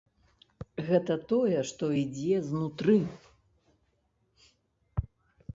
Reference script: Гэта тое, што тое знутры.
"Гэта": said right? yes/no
yes